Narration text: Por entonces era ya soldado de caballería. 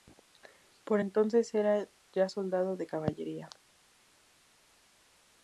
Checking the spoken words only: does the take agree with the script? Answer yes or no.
yes